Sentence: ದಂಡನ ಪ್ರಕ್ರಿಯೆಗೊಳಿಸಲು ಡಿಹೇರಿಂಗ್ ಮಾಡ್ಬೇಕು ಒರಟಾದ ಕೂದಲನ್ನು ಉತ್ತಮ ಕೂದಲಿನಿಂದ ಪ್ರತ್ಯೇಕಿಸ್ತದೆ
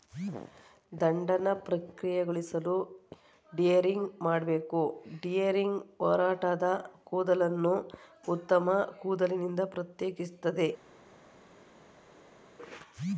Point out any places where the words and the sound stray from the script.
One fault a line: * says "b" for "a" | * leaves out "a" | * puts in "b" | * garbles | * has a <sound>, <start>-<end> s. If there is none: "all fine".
* puts in "ಡಿಹೇರಿಂಗ್"